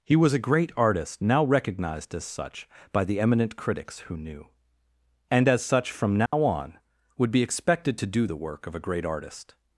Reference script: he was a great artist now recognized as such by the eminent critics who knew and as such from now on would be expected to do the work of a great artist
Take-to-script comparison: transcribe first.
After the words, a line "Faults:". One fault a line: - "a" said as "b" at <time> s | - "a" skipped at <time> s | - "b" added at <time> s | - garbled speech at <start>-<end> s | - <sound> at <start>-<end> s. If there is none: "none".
he was a great artist now recognized as such by the eminent critics who knew and as such from now on would be expected to do the work of a great artist
Faults:
- dropout at 6.3-6.3 s